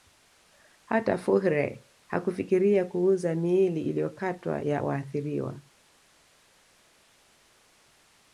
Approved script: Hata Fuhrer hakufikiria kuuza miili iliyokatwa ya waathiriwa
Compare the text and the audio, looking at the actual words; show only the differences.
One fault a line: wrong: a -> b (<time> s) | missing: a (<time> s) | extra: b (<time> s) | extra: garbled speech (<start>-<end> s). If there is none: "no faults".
no faults